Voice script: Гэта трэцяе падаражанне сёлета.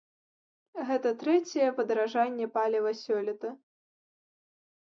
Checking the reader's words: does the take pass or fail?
fail